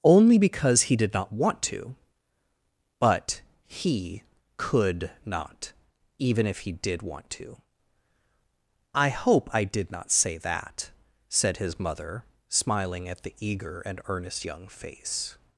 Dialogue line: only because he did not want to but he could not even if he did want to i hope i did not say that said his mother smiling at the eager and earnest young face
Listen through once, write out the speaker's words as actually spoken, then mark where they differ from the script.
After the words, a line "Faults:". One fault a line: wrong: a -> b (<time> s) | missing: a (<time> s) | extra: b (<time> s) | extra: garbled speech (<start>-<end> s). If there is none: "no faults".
only because he did not want to but he could not even if he did want to i hope i did not say that said his mother smiling at the eager and earnest young face
Faults:
no faults